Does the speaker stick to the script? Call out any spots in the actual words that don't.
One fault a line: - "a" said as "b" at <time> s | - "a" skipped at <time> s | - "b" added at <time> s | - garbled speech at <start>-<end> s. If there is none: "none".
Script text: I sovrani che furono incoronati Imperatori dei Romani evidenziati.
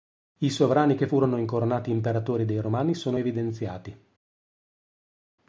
- "sono" added at 2.9 s